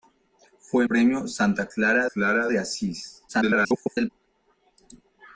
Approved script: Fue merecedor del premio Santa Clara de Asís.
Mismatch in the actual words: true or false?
true